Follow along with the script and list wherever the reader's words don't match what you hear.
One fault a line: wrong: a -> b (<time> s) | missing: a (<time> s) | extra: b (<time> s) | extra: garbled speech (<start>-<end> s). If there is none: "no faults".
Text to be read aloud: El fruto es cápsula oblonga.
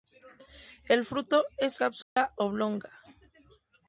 no faults